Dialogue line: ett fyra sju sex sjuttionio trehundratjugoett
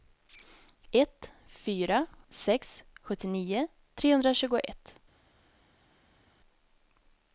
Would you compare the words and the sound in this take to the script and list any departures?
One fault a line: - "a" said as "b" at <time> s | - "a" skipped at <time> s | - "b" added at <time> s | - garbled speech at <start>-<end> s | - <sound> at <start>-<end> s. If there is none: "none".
- "sju" skipped at 2.1 s